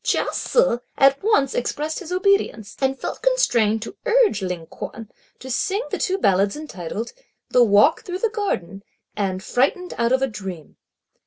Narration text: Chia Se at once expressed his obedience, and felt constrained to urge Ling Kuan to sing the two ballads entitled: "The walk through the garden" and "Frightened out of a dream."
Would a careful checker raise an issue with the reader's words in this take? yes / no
no